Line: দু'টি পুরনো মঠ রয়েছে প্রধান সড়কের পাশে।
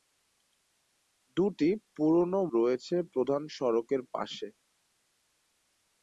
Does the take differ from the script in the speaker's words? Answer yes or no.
yes